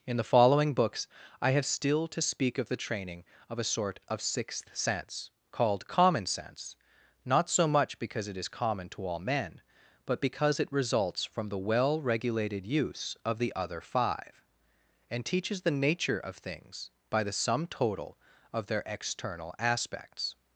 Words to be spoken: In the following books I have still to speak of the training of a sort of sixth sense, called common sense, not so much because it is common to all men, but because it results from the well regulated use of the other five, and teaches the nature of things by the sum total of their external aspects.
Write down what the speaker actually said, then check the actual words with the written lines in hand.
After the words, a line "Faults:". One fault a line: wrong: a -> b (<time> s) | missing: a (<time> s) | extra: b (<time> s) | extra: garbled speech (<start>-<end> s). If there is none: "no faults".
In the following books I have still to speak of the training of a sort of sixth sense, called common sense, not so much because it is common to all men, but because it results from the well regulated use of the other five, and teaches the nature of things by the sum total of their external aspects.
Faults:
no faults